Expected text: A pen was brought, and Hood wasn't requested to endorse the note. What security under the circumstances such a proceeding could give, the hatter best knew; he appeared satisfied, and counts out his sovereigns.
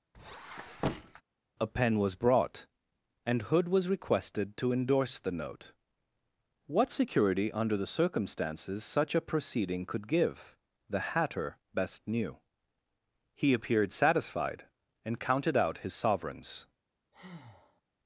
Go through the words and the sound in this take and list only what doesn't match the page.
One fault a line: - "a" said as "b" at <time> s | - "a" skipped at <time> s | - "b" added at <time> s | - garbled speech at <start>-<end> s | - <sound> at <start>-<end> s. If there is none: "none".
- squeak at 0.1-1.2 s
- "wasn't" said as "was" at 3.7 s
- "counts" said as "counted" at 15.2 s
- breath at 17.1-17.8 s